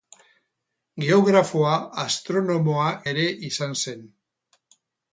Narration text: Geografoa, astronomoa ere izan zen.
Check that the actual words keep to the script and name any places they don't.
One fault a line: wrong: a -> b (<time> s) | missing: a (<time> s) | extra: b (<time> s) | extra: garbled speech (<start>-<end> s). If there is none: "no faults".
no faults